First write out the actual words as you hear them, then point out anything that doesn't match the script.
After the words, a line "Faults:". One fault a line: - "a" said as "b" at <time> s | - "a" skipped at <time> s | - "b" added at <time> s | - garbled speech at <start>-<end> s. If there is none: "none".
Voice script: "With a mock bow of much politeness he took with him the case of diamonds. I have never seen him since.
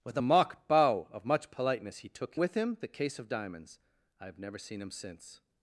"With a mock bow of much politeness he took with him the case of diamonds. I have never seen him since.
Faults:
none